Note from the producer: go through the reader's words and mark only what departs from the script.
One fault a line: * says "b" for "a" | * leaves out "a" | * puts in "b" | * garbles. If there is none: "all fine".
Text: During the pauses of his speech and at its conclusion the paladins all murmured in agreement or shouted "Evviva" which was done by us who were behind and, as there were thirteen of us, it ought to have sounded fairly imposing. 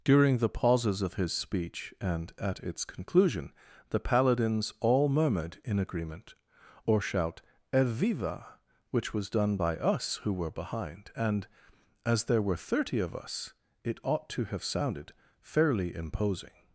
* says "shout" for "shouted"
* says "thirty" for "thirteen"